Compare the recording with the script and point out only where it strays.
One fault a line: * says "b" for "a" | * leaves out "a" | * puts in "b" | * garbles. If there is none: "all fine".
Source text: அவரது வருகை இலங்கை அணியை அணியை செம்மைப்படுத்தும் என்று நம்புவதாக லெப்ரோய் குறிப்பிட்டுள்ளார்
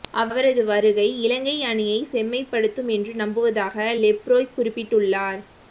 * leaves out "அணியை"